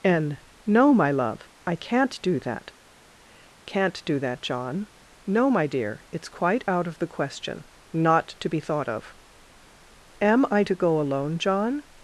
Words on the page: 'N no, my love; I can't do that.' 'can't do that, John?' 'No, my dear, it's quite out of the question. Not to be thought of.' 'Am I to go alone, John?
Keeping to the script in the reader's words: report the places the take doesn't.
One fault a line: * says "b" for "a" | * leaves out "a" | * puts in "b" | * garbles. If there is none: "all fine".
all fine